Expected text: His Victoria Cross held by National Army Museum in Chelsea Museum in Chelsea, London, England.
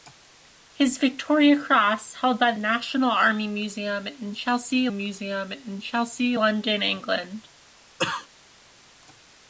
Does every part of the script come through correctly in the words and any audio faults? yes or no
no